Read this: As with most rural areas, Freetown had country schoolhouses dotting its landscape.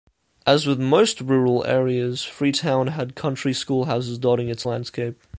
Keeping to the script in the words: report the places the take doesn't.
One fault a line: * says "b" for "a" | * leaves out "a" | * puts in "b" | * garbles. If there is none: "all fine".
all fine